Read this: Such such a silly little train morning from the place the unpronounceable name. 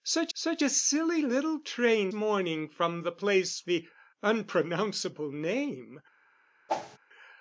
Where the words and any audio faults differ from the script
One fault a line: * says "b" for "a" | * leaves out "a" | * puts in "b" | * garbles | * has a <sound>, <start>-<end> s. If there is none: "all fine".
* has a whoosh, 6.7-7.0 s